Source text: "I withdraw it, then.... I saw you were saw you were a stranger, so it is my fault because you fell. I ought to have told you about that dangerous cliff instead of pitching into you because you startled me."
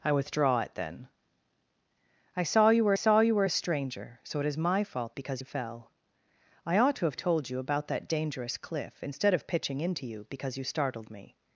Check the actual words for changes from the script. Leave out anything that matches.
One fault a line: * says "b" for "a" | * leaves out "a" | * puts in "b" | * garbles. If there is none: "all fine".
all fine